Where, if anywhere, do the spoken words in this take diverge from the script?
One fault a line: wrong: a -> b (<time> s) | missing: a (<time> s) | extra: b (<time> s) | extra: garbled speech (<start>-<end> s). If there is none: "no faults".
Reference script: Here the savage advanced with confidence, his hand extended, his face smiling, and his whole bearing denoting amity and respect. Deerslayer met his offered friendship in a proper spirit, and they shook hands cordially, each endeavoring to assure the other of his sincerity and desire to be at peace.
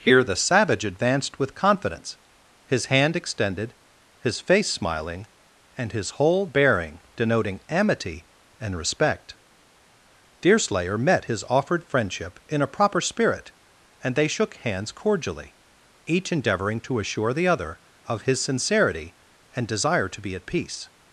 no faults